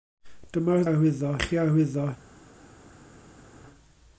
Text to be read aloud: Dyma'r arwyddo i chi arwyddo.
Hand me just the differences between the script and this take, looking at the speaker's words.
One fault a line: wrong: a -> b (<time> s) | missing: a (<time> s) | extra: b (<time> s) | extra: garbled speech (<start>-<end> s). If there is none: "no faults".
no faults